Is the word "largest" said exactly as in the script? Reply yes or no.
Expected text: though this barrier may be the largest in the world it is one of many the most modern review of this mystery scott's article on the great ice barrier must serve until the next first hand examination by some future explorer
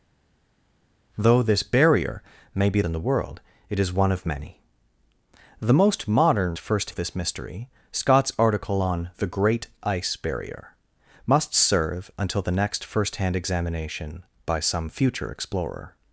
no